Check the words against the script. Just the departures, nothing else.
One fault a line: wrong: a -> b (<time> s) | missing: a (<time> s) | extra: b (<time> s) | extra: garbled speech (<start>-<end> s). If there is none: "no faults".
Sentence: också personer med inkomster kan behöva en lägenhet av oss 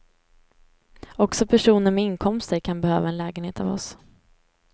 no faults